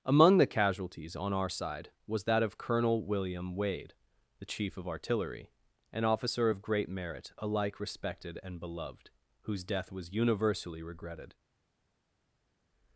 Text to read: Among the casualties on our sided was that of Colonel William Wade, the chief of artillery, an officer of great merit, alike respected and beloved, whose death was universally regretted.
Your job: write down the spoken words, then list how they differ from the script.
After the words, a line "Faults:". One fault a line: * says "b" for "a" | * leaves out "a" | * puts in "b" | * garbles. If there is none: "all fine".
Among the casualties on our side was that of Colonel William Wade, the chief of artillery, an officer of great merit, alike respected and beloved, whose death was universally regretted.
Faults:
* says "side" for "sided"